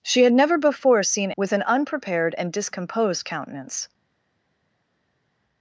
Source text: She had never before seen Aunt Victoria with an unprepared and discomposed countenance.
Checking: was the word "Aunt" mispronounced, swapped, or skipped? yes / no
yes